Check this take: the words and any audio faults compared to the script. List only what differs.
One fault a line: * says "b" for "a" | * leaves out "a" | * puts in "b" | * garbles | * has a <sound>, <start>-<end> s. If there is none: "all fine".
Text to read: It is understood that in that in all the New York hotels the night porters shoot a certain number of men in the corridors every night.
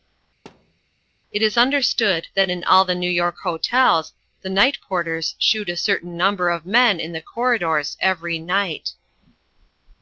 * has a thud, 0.5-0.8 s
* leaves out "that in"